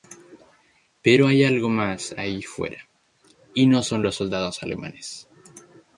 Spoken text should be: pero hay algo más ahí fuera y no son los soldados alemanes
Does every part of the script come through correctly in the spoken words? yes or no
yes